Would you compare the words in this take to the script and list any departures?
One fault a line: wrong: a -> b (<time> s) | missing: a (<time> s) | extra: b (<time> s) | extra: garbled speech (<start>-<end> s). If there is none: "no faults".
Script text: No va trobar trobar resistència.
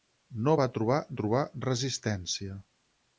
no faults